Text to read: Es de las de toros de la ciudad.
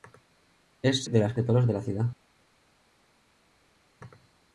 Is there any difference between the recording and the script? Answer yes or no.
no